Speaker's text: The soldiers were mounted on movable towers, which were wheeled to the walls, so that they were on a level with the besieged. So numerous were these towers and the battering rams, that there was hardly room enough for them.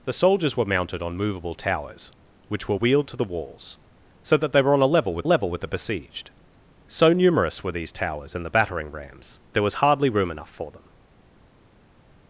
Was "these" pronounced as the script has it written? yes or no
yes